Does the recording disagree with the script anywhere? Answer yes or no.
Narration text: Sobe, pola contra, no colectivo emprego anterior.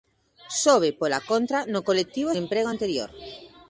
no